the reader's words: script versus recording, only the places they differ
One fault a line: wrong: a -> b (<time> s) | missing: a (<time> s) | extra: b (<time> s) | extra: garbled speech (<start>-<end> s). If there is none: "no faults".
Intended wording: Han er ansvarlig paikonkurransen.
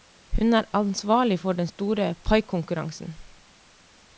wrong: Han -> Hun (0.4 s)
extra: for den store (1.4 s)